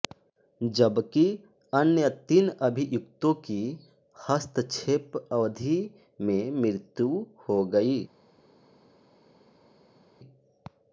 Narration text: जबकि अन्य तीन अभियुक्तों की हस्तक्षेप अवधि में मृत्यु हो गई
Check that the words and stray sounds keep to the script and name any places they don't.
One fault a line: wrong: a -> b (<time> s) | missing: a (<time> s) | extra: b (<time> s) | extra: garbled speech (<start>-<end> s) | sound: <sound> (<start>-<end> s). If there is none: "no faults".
no faults